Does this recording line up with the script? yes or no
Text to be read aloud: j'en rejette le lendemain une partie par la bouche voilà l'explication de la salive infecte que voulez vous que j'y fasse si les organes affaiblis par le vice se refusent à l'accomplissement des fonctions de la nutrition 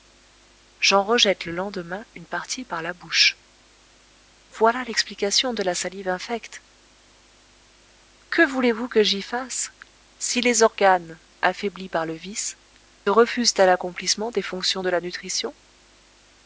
no